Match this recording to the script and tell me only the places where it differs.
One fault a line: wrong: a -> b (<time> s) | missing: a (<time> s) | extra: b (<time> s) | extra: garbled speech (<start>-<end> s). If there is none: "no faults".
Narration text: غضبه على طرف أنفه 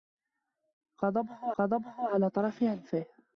extra: غضبه (1.6 s)